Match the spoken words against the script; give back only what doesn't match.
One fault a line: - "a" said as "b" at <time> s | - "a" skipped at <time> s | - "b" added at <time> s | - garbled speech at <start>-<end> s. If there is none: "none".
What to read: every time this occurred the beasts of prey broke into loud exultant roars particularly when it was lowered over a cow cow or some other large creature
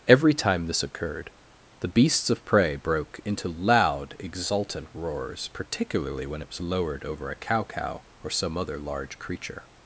none